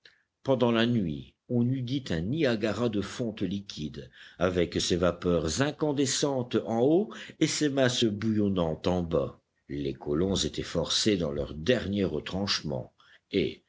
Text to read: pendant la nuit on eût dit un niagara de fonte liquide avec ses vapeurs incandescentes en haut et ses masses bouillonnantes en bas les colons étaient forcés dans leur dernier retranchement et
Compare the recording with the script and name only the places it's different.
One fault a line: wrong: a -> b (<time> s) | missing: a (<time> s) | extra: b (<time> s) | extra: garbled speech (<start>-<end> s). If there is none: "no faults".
no faults